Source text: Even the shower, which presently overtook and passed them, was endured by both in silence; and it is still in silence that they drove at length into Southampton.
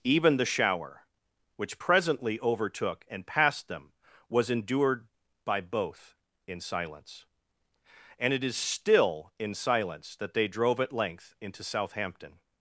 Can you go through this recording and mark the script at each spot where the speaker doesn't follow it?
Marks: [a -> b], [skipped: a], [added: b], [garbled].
Even the shower, which presently overtook and passed them, was endured by both in silence; and it is still in silence that they drove at length into Southampton.